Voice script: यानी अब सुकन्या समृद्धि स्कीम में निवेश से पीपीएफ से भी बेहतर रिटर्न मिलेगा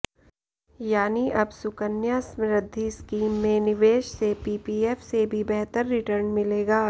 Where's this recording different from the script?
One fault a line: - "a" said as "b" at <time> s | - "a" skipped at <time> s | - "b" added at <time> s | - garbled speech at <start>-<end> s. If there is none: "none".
none